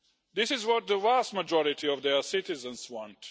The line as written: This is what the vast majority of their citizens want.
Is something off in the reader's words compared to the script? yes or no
no